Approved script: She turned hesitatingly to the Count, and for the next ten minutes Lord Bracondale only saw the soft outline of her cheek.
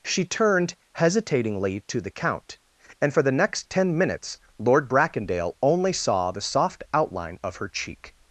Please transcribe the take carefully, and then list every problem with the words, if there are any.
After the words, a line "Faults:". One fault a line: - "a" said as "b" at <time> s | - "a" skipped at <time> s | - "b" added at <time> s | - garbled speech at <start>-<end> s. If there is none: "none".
She turned hesitatingly to the Count, and for the next ten minutes Lord Bracondale only saw the soft outline of her cheek.
Faults:
none